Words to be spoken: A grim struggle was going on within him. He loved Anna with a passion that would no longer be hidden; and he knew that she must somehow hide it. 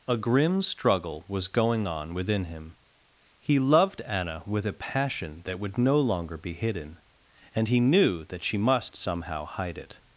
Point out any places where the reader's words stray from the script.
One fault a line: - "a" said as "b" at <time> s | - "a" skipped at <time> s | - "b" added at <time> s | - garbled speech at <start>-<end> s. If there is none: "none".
none